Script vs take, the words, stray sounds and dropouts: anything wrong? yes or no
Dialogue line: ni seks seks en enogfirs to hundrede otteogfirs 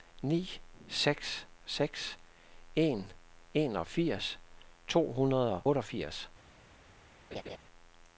yes